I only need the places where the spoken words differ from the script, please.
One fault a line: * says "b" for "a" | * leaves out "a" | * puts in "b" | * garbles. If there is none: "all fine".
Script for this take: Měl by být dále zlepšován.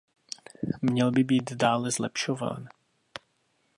all fine